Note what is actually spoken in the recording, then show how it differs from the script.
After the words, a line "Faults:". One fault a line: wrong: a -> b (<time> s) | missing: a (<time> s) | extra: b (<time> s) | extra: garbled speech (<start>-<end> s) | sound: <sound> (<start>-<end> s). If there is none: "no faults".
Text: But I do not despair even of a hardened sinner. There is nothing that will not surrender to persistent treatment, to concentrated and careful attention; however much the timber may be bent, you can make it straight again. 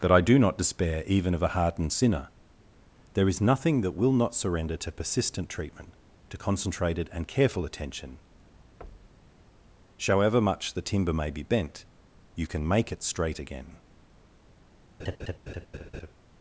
That I do not despair even of a hardened sinner. There is nothing that will not surrender to persistent treatment, to concentrated and careful attention; however much the timber may be bent, you can make it straight again.
Faults:
wrong: But -> That (0.0 s)
sound: thud (8.8-9.4 s)
sound: laugh (15.0-16.1 s)